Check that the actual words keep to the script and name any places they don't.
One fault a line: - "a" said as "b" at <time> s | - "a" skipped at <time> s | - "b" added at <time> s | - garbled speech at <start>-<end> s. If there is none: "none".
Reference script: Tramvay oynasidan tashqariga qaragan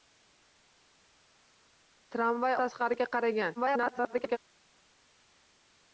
- "oynasidan" skipped at 2.6 s
- garbled speech at 3.6-4.4 s